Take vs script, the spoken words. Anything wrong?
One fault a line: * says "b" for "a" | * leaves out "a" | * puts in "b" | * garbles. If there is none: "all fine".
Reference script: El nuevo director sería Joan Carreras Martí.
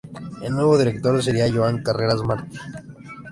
all fine